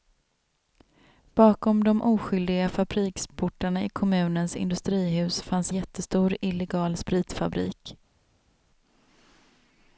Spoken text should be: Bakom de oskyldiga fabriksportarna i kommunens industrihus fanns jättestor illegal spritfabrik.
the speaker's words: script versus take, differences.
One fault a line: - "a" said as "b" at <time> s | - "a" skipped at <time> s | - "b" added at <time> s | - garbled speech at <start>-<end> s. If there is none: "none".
none